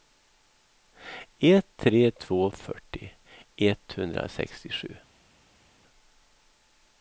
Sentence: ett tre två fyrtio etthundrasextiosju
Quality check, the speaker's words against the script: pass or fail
pass